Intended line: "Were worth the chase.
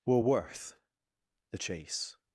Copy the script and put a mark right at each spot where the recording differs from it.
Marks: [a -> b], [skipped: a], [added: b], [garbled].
"Were worth the chase.